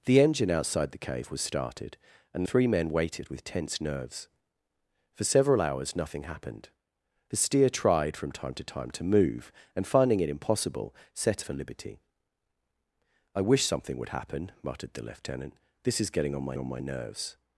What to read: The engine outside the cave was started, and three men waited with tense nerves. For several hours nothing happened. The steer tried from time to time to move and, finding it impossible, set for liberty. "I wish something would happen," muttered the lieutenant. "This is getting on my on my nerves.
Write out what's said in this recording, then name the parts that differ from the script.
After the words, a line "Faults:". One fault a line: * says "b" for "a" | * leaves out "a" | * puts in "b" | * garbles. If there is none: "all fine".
The engine outside the cave was started, and three men waited with tense nerves. For several hours nothing happened. The steer tried from time to time to move and, finding it impossible, set for liberty. "I wish something would happen," muttered the lieutenant. "This is getting on my on my nerves.
Faults:
all fine